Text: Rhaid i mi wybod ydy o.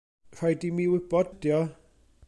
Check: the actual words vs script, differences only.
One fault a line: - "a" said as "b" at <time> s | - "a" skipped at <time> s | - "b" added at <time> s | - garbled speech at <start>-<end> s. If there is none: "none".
none